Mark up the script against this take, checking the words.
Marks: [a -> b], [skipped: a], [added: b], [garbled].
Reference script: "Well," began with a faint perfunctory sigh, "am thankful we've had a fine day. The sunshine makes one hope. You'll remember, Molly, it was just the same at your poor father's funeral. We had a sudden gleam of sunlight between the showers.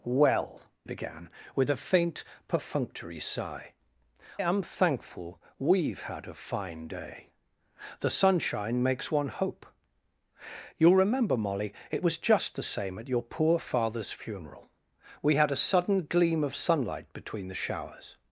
"Well," began with a faint perfunctory sigh, "am thankful we've had a fine day. The sunshine makes one hope. You'll remember, Molly, it was just the same at your poor father's funeral. We had a sudden gleam of sunlight between the showers.